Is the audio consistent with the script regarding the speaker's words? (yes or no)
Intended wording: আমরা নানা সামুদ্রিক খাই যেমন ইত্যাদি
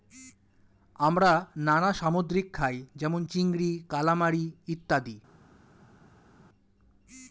no